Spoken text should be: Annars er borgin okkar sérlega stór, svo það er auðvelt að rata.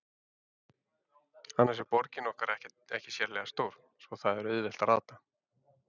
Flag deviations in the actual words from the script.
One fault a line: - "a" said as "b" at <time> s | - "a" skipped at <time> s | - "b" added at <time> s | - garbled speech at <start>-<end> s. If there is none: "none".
- "ekki" added at 2.5 s